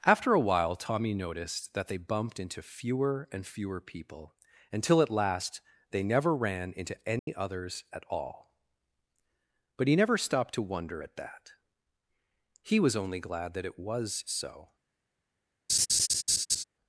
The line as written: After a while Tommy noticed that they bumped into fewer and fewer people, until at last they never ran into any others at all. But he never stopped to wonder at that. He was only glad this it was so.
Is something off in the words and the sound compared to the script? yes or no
yes